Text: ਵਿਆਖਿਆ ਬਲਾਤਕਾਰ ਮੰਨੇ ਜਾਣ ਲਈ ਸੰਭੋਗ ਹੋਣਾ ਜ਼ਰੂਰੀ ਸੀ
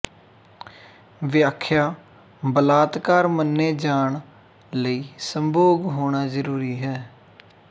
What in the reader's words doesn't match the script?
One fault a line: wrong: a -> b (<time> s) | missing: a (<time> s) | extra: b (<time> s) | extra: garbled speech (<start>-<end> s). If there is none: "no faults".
wrong: ਸੀ -> ਹੈ (6.8 s)